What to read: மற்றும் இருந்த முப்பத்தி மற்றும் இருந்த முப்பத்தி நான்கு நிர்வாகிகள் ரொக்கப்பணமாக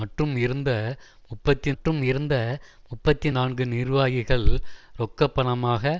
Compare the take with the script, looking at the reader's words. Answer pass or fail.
pass